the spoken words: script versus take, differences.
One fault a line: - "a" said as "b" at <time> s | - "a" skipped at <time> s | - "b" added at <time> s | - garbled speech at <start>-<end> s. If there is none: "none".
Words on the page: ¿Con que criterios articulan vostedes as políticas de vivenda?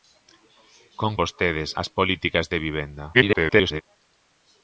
- "que criterios articulan" skipped at 1.1 s
- garbled speech at 3.1-3.8 s